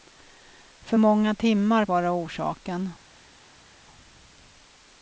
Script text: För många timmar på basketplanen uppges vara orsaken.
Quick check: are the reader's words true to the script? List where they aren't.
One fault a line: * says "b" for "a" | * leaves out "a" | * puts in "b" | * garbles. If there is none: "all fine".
* leaves out "på basketplanen uppges"